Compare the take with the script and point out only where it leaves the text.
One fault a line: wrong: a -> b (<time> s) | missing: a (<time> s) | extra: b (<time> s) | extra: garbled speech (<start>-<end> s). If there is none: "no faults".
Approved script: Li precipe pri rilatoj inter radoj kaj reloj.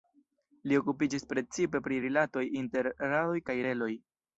extra: okupiĝis (0.8 s)